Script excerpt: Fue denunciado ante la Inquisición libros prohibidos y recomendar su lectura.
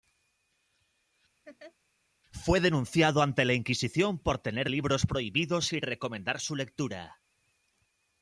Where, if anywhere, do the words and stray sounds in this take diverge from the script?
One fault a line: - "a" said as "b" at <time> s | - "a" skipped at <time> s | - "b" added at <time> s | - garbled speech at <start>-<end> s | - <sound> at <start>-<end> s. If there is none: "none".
- laugh at 1.4-1.7 s
- "por tener" added at 4.2 s